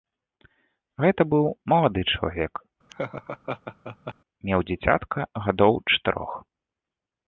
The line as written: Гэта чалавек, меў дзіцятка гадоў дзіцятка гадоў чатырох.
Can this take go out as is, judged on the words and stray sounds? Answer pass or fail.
fail